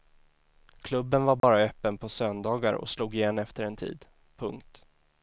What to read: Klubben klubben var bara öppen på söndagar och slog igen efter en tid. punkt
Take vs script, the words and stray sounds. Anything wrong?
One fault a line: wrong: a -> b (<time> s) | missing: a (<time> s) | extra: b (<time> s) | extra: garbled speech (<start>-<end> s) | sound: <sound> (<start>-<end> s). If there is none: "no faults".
missing: klubben (1.2 s)
sound: dropout (1.4-1.4 s)